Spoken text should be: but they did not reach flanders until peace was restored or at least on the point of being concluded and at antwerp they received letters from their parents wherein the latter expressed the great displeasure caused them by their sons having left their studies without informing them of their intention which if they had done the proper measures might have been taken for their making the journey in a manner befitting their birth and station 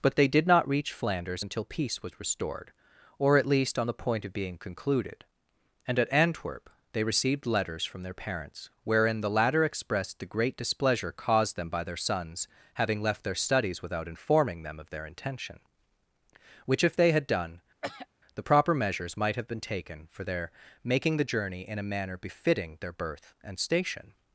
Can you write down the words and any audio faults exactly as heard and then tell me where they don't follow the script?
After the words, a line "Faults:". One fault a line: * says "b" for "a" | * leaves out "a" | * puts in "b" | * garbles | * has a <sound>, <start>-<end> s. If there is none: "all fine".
but they did not reach flanders until peace was restored or at least on the point of being concluded and at antwerp they received letters from their parents wherein the latter expressed the great displeasure caused them by their sons having left their studies without informing them of their intention which if they had done the proper measures might have been taken for their making the journey in a manner befitting their birth and station
Faults:
* has a throat clearing, 17.8-18.1 s